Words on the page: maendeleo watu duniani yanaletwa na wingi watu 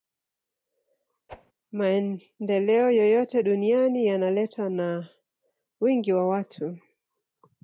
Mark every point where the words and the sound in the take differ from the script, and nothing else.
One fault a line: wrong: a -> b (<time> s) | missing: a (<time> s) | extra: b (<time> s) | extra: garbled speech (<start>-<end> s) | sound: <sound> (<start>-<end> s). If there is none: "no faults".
sound: whoosh (1.3-1.5 s)
wrong: watu -> yoyote (2.9 s)
extra: wa (6.1 s)